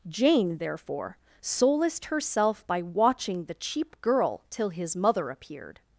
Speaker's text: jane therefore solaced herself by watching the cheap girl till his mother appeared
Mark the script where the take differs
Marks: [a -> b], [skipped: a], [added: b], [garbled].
jane therefore solaced herself by watching the cheap girl till his mother appeared